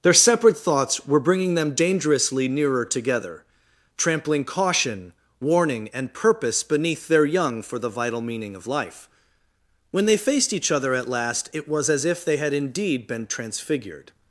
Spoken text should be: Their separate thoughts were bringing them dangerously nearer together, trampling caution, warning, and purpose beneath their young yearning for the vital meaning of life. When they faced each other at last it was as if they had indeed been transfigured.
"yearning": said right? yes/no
no